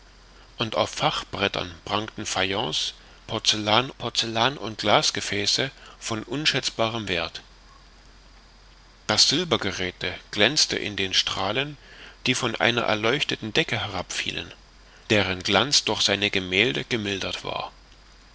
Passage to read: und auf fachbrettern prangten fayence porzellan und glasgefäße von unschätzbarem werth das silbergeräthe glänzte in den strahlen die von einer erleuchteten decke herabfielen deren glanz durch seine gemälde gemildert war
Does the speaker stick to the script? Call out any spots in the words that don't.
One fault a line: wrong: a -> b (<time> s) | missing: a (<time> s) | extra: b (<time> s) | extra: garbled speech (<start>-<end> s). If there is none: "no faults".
extra: porzellan (4.0 s)